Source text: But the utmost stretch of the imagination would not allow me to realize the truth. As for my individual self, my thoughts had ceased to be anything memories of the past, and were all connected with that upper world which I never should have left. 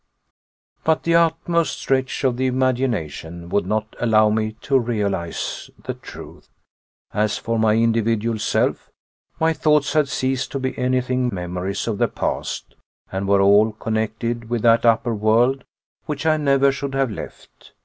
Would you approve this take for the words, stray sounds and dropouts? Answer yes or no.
yes